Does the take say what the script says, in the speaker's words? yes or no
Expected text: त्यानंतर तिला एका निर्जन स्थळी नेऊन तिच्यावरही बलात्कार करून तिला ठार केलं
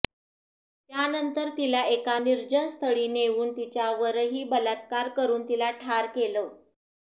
yes